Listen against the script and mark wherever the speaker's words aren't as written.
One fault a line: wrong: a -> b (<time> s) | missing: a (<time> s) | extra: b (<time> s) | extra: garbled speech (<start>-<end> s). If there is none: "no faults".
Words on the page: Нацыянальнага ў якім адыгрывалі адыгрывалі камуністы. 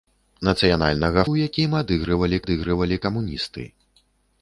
no faults